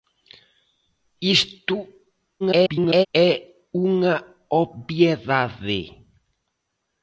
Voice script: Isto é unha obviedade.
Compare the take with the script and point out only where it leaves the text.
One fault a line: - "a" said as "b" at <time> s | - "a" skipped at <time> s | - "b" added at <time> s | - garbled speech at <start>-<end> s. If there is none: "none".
- garbled speech at 2.4-3.1 s